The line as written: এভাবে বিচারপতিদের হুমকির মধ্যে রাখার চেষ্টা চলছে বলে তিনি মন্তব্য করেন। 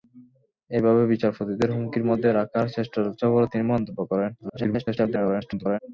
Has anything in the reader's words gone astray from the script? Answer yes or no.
yes